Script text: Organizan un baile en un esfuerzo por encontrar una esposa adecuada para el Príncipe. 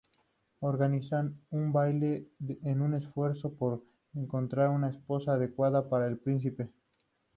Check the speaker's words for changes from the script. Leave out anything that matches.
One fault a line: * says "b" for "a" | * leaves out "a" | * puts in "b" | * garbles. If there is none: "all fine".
all fine